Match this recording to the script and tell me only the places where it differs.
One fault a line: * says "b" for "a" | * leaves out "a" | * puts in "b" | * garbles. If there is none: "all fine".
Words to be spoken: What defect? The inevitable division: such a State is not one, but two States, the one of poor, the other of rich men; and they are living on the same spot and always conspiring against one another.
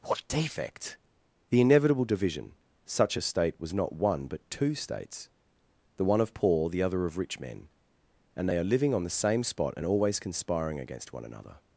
* says "was" for "is"